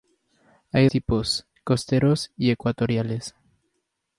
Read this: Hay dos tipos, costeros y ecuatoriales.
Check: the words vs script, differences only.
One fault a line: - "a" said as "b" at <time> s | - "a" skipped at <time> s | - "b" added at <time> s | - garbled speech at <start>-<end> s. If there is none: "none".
- "dos" skipped at 0.9 s